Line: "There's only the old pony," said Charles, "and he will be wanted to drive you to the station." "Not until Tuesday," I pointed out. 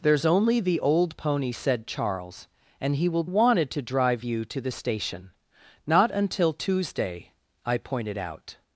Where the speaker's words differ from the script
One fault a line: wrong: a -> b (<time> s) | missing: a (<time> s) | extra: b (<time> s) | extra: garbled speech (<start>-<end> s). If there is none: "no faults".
missing: be (3.2 s)